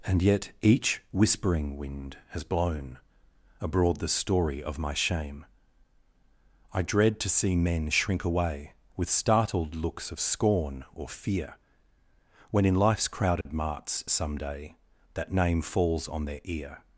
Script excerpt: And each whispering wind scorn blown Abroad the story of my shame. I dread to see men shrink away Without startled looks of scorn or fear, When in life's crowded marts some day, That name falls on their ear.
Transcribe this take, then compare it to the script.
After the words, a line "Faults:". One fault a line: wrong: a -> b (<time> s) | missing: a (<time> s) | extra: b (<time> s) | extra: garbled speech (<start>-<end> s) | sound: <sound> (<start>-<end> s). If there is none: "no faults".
And yet each whispering wind has blown Abroad the story of my shame. I dread to see men shrink away With startled looks of scorn or fear, When in life's crowded marts some day, That name falls on their ear.
Faults:
extra: yet (0.2 s)
wrong: scorn -> has (2.3 s)
wrong: Without -> With (8.9 s)
sound: dropout (13.4-13.5 s)